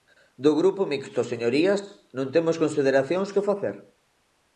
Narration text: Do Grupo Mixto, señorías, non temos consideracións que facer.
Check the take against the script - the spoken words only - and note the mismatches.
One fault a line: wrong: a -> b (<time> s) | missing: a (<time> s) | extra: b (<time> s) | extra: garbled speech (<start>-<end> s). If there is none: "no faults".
no faults